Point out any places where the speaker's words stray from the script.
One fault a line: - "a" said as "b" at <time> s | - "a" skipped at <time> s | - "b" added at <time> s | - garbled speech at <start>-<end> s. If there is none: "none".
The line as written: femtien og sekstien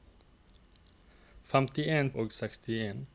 none